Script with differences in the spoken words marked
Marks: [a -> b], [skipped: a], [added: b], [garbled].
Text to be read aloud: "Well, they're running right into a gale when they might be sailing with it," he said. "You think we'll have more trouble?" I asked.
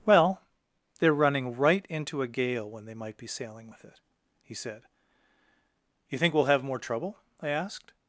"Well, they're running right into a gale when they might be sailing with it," he said. "You think we'll have more trouble?" I asked.